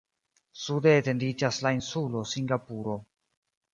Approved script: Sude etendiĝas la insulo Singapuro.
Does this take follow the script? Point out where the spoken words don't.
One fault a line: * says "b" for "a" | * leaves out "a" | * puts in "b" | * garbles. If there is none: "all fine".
all fine